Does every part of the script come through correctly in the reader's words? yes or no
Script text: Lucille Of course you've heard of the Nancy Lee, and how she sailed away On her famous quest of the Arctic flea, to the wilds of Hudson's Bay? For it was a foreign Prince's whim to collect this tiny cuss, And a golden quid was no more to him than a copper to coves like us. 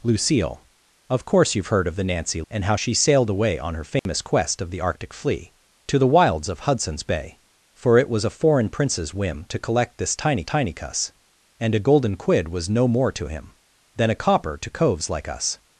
no